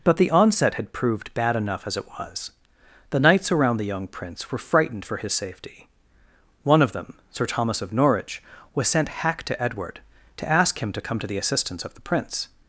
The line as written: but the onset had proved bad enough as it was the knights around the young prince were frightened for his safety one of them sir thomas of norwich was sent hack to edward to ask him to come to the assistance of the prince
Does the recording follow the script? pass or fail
pass